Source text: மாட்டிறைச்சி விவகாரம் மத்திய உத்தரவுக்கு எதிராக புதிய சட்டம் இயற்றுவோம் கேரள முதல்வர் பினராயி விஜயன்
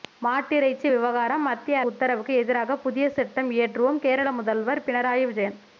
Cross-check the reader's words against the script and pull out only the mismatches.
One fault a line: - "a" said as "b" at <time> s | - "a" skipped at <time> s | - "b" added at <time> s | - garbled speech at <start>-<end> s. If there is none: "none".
none